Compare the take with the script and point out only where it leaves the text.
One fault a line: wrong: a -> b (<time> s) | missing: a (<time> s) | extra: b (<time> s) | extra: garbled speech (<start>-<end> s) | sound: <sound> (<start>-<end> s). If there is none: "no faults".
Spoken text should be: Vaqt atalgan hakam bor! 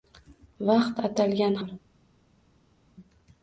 missing: hakam (1.6 s)